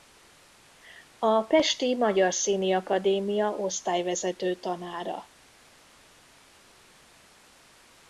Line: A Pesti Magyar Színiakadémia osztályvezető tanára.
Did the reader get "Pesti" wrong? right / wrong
right